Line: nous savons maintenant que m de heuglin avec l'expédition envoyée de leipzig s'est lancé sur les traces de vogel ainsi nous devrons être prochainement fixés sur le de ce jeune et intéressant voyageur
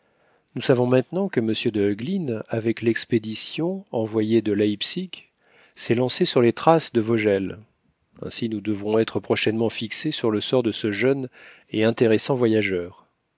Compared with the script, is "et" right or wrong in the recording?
right